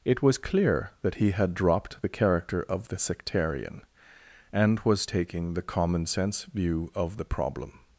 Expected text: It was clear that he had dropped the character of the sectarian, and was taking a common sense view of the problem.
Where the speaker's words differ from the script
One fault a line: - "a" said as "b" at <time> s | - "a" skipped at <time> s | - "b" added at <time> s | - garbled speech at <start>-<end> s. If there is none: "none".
- "a" said as "the" at 5.5 s